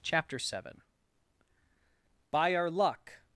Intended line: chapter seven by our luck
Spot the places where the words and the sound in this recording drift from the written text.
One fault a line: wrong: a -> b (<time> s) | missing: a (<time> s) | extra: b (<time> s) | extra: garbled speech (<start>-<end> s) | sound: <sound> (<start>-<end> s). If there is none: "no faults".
no faults